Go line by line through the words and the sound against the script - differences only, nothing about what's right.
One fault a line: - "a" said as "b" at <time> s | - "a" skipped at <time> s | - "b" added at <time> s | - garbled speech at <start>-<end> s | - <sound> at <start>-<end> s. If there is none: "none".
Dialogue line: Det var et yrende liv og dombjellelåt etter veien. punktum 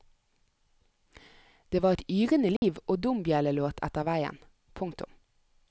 - dropout at 2.6-2.6 s